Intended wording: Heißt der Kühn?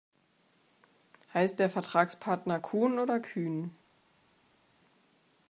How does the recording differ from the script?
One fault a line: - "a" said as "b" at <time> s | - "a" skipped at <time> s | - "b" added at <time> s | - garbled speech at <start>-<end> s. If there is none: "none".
- "Vertragspartner Kuhn oder" added at 1.7 s